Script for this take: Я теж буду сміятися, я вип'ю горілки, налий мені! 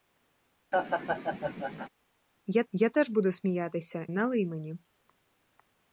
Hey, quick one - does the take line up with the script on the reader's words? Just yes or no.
no